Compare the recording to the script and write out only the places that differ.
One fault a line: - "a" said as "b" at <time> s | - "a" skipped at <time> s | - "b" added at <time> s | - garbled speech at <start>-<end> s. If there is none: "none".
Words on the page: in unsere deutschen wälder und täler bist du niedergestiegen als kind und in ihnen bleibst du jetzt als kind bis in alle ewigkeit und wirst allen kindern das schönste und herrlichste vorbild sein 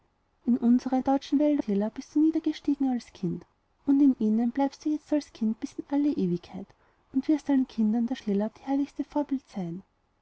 - "und" skipped at 1.6 s
- "schönste" said as "täler" at 8.2 s